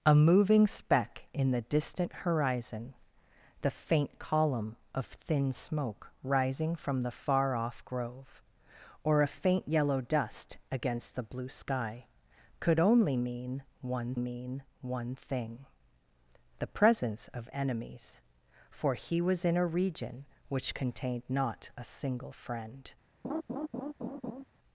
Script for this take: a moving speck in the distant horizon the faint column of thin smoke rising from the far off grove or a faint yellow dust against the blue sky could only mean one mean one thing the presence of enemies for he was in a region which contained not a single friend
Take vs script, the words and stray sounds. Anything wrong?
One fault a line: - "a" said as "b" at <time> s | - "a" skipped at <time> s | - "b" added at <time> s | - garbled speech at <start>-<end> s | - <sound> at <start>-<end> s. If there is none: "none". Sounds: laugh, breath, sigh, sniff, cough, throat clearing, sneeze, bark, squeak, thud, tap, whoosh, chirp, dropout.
- laugh at 23.2-24.4 s